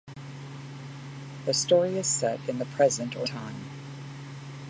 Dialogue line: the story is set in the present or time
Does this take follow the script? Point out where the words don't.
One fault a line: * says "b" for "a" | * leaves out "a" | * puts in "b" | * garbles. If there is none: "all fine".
all fine